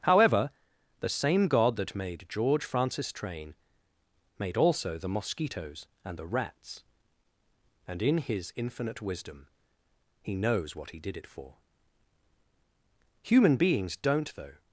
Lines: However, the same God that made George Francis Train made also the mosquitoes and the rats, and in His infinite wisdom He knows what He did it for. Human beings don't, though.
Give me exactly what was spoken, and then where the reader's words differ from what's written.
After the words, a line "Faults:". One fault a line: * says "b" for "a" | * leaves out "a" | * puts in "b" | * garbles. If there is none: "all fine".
However, the same God that made George Francis Train made also the mosquitoes and the rats, and in His infinite wisdom He knows what He did it for. Human beings don't, though.
Faults:
all fine